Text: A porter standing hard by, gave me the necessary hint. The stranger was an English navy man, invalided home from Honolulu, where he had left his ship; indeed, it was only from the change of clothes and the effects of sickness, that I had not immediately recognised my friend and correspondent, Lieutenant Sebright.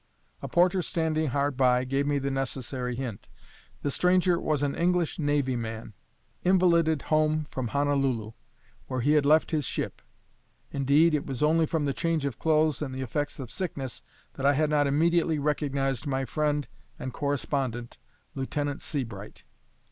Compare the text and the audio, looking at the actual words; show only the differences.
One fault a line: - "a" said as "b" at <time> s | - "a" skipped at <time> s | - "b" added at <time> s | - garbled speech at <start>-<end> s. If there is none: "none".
none